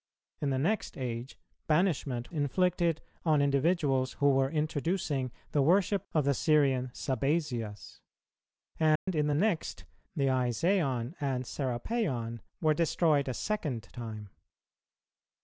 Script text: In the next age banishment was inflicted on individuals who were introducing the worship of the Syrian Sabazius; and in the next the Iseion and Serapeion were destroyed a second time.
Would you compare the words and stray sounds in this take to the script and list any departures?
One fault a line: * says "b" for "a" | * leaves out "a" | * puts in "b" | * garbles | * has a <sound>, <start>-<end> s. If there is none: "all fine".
* leaves out "was"
* has a dropout, 9.0-9.1 s